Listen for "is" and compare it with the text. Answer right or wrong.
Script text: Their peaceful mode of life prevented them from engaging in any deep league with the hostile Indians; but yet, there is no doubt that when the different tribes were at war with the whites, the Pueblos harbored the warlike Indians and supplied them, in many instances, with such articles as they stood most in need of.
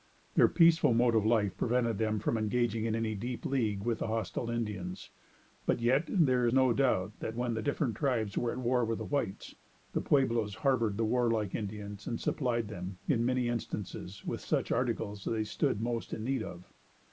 wrong